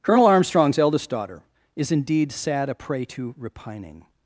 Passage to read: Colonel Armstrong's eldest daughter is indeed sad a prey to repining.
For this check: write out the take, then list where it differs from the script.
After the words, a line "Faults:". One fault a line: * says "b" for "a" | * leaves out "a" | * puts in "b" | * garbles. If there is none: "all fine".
Colonel Armstrong's eldest daughter is indeed sad a prey to repining.
Faults:
all fine